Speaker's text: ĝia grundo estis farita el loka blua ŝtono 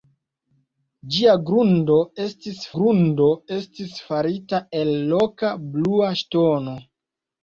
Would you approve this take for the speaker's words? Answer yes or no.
no